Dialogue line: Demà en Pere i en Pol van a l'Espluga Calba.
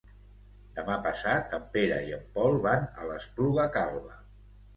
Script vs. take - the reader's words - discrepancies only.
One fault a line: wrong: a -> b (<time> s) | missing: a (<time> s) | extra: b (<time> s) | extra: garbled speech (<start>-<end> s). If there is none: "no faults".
extra: passat (1.1 s)